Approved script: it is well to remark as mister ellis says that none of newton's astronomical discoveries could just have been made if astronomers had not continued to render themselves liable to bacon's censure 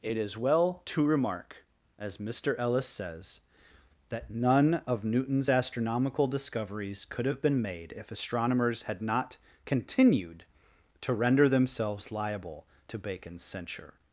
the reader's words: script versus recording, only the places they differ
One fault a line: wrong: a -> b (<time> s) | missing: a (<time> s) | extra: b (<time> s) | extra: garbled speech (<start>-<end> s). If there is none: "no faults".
missing: just (7.2 s)